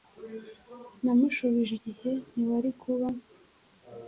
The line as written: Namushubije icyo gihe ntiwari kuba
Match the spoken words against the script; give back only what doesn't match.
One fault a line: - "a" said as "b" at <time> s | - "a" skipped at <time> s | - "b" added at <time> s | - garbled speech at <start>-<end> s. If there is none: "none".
- "icyo" skipped at 1.7 s